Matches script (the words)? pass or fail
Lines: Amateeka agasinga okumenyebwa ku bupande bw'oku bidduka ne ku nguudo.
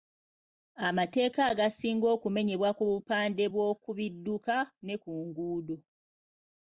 pass